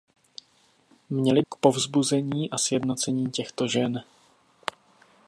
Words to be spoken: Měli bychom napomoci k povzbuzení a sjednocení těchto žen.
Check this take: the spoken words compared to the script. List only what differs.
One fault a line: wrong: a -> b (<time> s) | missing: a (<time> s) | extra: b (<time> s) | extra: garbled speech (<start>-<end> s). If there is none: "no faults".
missing: bychom napomoci (1.4 s)